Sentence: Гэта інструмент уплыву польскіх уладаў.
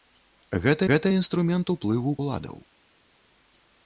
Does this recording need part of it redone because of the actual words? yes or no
yes